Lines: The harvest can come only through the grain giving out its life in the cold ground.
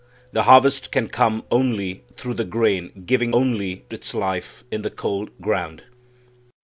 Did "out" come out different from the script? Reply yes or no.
yes